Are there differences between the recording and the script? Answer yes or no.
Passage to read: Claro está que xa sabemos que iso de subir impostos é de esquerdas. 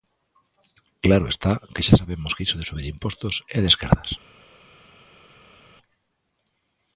no